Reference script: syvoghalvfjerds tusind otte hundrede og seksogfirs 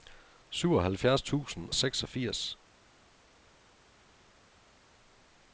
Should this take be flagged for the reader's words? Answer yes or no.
yes